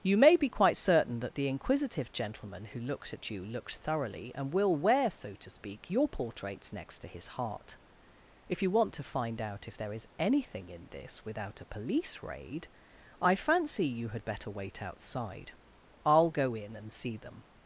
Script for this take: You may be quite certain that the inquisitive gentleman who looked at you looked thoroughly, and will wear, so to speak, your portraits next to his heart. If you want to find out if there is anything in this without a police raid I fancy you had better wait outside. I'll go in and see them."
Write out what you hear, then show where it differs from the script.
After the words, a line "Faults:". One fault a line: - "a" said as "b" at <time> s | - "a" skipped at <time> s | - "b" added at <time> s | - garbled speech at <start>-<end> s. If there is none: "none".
You may be quite certain that the inquisitive gentleman who looked at you looked thoroughly, and will wear, so to speak, your portraits next to his heart. If you want to find out if there is anything in this without a police raid I fancy you had better wait outside. I'll go in and see them."
Faults:
none